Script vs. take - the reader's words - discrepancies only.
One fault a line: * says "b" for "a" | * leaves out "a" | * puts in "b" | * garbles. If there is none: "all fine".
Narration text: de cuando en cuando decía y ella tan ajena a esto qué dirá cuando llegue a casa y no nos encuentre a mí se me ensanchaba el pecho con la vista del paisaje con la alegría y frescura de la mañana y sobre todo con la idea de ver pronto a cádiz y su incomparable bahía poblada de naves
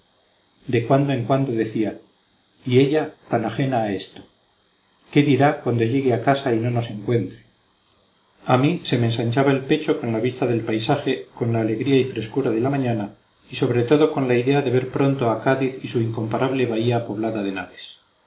all fine